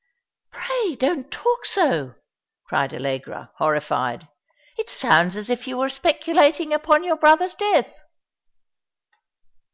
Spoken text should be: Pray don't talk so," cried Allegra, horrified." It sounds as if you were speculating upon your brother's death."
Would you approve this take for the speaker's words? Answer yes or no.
yes